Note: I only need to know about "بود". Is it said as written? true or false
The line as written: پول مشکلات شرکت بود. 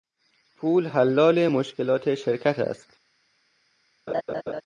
false